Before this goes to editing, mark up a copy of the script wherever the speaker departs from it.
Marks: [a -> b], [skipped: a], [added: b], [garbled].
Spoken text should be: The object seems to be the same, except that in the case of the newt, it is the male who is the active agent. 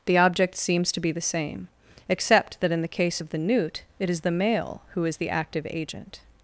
The object seems to be the same, except that in the case of the newt, it is the male who is the active agent.